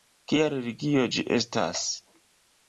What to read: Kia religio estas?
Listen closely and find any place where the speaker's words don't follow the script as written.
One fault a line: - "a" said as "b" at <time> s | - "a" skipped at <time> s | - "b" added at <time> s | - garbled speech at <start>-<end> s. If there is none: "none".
- "ĝi" added at 1.1 s